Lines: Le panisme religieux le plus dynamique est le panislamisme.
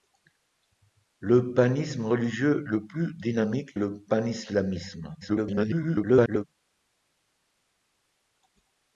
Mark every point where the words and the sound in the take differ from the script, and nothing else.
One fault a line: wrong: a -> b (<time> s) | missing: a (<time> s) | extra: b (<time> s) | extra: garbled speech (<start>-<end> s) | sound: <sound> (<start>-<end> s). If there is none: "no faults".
missing: est (3.7 s)
extra: garbled speech (5.2-6.4 s)